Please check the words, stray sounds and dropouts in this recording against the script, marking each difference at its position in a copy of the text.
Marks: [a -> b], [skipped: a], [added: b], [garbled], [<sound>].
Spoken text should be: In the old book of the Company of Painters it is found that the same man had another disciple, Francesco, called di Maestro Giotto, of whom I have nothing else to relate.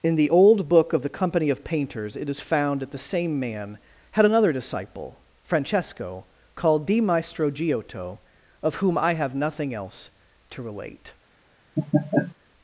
In the old book of the Company of Painters it is found that the same man had another disciple, Francesco, called di Maestro Giotto, of whom I have nothing else to relate. [laugh]